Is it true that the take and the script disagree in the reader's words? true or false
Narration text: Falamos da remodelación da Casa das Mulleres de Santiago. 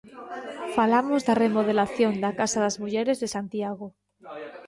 false